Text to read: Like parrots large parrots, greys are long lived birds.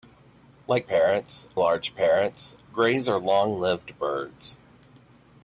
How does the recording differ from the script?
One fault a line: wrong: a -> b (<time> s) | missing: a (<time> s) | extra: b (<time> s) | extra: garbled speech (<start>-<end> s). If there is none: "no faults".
no faults